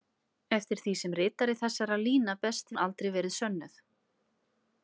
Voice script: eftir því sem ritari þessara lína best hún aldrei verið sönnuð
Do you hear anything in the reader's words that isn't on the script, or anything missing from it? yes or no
no